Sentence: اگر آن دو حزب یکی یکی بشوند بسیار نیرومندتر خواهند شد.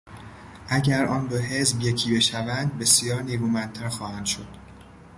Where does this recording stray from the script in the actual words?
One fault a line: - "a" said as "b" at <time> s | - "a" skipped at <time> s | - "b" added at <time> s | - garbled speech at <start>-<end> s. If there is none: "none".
- "یکی" skipped at 2.1 s